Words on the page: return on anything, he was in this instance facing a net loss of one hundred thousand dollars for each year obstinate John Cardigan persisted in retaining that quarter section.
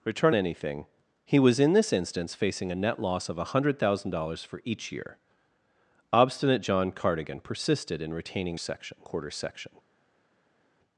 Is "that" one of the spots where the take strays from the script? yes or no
yes